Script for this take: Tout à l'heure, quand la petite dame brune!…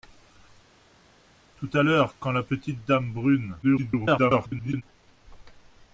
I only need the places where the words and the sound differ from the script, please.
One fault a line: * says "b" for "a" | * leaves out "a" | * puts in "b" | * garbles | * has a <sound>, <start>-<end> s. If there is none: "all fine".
* garbles